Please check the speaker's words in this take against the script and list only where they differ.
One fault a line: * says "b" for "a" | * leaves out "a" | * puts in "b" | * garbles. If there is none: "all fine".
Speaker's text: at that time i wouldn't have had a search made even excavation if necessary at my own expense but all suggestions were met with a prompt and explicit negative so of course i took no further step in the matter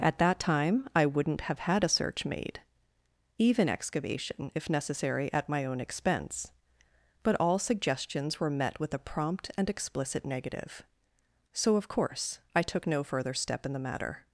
all fine